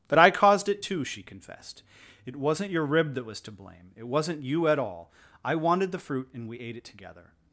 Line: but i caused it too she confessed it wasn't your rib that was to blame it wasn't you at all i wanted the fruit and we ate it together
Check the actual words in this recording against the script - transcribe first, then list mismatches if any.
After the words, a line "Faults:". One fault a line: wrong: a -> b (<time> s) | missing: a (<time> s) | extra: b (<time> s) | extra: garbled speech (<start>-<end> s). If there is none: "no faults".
but i caused it too she confessed it wasn't your rib that was to blame it wasn't you at all i wanted the fruit and we ate it together
Faults:
no faults